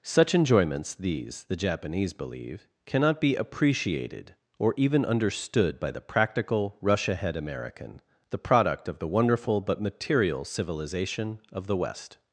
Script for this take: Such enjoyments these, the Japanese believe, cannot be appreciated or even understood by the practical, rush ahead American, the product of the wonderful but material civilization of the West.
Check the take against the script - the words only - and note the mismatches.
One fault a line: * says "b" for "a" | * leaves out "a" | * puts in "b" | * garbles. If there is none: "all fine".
all fine